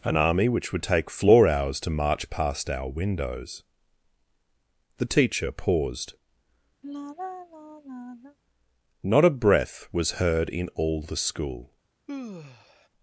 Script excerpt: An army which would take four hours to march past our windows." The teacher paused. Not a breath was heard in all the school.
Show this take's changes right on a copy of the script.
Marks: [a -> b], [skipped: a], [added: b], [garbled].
An army which would take [four -> floor] hours to march past our windows." The teacher paused. Not a breath was heard in all the school.